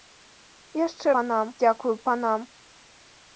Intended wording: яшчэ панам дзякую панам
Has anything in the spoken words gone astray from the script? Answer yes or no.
no